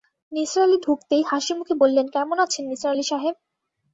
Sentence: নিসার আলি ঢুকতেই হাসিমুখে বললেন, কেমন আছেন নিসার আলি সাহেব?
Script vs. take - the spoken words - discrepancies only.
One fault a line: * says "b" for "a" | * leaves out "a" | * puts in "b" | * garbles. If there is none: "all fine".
all fine